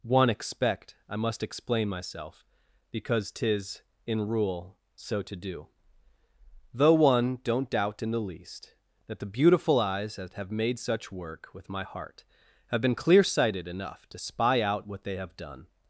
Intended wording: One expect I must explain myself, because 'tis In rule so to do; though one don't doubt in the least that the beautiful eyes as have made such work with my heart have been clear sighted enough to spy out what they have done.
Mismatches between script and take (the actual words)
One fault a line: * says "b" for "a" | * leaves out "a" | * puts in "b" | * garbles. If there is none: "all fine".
* says "that" for "as"